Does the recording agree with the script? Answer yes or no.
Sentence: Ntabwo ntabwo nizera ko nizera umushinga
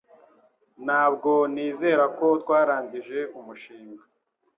no